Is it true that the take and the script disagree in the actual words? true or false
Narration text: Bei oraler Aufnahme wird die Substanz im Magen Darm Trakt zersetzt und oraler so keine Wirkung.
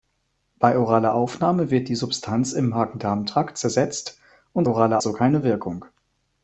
false